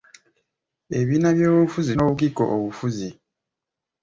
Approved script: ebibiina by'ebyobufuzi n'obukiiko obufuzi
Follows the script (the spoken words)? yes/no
yes